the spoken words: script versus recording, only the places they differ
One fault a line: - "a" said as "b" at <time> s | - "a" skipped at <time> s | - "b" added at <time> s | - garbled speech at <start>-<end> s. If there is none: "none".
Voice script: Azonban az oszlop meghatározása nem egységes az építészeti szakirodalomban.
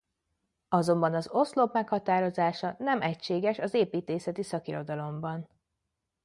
none